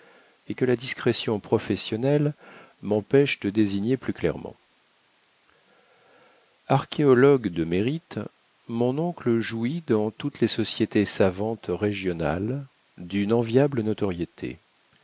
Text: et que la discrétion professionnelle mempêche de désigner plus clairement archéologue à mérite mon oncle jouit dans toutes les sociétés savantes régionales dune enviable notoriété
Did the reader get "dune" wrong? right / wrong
right